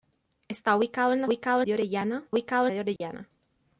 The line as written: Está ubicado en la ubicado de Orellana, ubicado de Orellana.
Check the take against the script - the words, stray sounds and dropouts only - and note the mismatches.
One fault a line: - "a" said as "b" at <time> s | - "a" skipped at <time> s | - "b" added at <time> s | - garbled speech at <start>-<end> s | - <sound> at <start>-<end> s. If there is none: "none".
- dropout at 3.0-3.0 s